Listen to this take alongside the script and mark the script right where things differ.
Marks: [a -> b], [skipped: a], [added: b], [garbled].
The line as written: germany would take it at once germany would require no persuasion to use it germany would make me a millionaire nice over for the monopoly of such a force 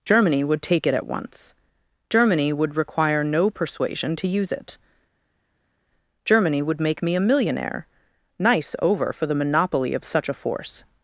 germany would take it at once germany would require no persuasion to use it germany would make me a millionaire nice over for the monopoly of such a force